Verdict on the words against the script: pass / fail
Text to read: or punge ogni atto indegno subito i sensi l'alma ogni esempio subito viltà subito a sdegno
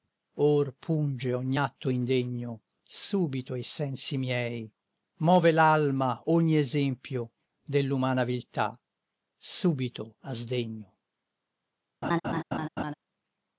fail